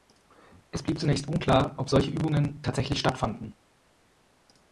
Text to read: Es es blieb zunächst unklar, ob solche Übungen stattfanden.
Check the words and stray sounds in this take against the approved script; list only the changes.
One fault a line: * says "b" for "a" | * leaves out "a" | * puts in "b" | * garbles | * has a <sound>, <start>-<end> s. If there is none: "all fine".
* leaves out "es"
* puts in "tatsächlich"